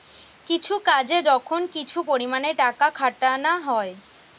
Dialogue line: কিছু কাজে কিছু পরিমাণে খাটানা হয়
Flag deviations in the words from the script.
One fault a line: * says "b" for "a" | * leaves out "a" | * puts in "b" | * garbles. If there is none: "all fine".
* puts in "যখন"
* puts in "টাকা"